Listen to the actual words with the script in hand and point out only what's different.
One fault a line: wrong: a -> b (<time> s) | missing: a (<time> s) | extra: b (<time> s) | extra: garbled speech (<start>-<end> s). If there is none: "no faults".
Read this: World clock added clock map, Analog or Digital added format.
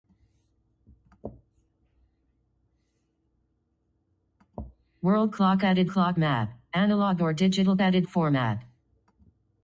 no faults